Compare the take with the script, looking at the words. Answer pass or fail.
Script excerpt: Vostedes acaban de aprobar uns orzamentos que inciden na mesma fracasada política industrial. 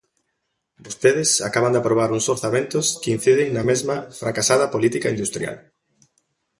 pass